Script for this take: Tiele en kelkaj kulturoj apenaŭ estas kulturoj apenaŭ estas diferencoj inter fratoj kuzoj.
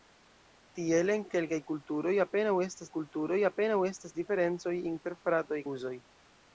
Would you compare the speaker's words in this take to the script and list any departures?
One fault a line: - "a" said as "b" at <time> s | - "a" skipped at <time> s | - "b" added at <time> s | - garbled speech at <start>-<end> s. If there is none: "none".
none